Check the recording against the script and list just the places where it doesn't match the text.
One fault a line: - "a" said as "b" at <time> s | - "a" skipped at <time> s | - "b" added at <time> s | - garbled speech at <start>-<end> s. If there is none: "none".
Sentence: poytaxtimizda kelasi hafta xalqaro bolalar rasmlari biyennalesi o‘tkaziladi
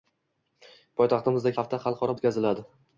- "kelasi" skipped at 1.5 s
- "bolalar rasmlari biyennalesi" skipped at 2.2 s